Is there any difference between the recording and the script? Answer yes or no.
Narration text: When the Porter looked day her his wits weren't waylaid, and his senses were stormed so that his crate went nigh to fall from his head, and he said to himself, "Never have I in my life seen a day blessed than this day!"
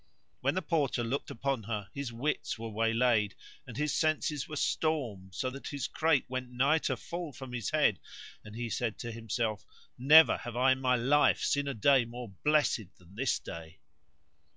yes